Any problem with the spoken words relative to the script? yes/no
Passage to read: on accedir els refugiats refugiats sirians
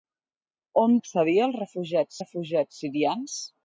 no